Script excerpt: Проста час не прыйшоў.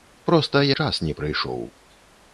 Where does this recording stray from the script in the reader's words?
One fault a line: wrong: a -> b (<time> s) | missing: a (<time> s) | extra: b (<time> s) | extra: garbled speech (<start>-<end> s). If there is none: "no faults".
no faults